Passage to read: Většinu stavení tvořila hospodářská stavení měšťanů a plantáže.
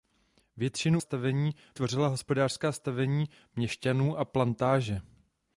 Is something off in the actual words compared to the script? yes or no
no